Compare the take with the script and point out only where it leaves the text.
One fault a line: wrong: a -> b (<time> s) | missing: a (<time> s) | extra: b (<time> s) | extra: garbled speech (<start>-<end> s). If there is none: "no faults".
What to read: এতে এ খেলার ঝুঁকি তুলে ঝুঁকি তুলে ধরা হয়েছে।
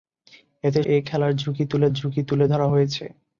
no faults